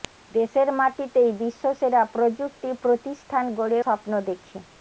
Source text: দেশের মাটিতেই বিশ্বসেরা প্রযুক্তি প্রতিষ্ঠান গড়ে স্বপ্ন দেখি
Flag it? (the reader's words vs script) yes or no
no